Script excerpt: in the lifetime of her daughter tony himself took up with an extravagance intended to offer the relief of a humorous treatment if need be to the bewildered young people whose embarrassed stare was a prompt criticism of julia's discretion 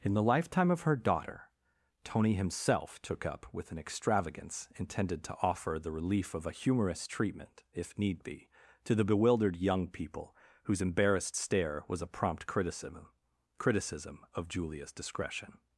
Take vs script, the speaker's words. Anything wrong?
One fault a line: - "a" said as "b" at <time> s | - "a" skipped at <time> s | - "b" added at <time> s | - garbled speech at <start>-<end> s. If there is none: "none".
- "criticism" added at 13.6 s